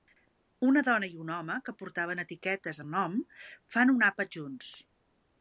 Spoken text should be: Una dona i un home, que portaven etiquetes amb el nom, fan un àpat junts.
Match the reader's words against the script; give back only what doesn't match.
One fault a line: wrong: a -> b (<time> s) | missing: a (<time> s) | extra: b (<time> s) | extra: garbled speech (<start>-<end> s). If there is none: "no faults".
missing: amb (2.8 s)